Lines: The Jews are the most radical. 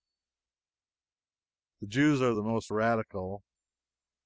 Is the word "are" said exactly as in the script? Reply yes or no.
yes